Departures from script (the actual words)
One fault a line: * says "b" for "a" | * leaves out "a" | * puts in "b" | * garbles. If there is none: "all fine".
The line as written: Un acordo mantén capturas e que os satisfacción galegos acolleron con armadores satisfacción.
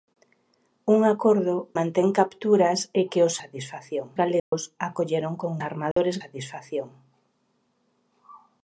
all fine